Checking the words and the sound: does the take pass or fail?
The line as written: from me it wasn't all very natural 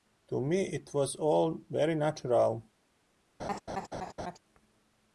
fail